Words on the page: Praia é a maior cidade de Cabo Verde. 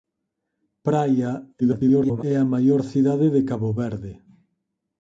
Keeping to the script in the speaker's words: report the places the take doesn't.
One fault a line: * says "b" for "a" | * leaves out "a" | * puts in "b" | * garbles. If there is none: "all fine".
* garbles